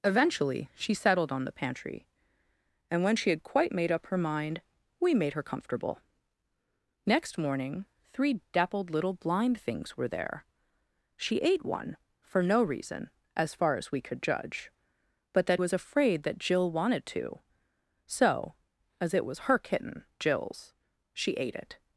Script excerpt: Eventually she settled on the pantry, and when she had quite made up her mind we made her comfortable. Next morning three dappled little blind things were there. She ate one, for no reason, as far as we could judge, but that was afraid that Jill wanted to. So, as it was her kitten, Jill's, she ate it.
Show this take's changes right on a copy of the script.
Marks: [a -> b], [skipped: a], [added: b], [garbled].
Eventually she settled on the pantry, and when she had quite made up her mind we made her comfortable. Next morning three dappled little blind things were there. She ate one, for no reason, as far as we could judge, but that was afraid that Jill wanted to. So, as it was her kitten, Jill's, she ate it.